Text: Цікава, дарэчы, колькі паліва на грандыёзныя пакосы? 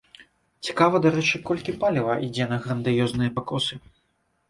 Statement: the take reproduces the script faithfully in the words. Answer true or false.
false